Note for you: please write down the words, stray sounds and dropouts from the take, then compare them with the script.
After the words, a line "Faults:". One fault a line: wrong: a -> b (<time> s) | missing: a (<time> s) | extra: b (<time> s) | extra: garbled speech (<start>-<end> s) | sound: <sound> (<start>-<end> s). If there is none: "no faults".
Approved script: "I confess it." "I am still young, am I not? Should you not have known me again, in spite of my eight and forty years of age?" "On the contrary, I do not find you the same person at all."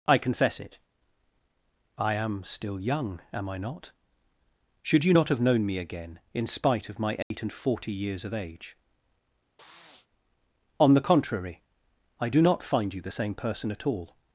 "I confess it." "I am still young, am I not? Should you not have known me again, in spite of my eight and forty years of age?" "On the contrary, I do not find you the same person at all."
Faults:
sound: dropout (7.2-7.3 s)
sound: sniff (9.6-10.1 s)